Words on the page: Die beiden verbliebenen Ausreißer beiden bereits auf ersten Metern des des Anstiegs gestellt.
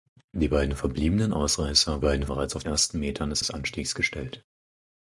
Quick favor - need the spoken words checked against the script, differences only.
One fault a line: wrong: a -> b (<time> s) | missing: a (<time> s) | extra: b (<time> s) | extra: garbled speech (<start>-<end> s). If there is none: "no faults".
no faults